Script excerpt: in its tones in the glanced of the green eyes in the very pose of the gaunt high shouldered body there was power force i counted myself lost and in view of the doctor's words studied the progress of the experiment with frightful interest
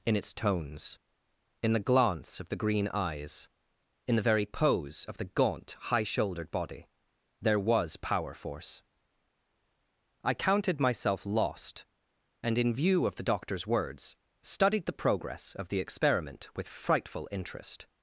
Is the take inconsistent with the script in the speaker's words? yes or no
yes